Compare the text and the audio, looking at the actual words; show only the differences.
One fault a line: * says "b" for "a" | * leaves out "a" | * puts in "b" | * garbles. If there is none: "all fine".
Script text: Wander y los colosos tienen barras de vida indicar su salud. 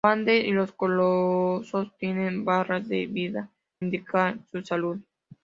all fine